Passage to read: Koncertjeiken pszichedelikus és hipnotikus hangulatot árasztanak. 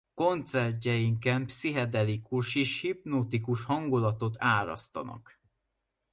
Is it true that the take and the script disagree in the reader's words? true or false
false